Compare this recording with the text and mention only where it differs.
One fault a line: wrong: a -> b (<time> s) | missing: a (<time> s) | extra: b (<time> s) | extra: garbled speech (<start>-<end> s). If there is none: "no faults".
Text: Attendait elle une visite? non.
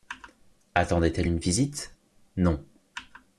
no faults